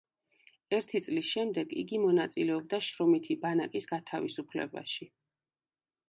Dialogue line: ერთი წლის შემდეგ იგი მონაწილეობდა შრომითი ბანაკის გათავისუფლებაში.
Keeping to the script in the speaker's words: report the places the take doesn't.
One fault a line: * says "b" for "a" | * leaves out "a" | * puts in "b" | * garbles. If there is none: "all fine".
all fine